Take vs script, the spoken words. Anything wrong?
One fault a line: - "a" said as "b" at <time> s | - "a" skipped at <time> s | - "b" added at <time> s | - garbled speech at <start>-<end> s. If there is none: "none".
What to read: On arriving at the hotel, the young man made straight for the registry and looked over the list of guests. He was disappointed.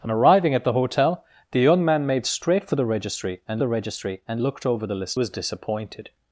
- "the registry and" added at 3.6 s
- "of guests He" skipped at 5.2 s